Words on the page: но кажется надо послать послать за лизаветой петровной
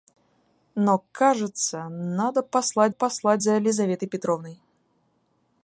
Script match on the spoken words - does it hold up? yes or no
yes